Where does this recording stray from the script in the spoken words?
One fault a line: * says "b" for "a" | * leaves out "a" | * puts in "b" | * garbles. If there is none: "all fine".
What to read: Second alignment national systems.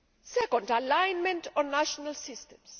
* puts in "on"